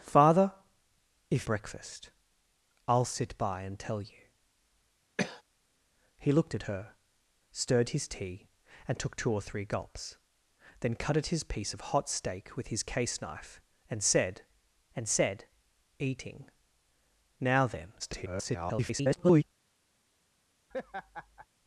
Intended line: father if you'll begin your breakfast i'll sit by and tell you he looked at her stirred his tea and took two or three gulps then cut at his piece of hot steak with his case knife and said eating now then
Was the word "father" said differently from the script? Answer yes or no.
no